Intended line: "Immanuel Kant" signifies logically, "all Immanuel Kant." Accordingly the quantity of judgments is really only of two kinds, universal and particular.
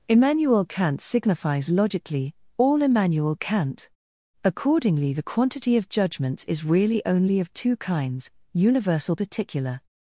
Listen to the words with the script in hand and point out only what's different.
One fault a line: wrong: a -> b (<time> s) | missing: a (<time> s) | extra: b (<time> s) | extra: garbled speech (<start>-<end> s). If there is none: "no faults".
missing: and (9.2 s)